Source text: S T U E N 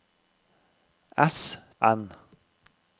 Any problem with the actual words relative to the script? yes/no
yes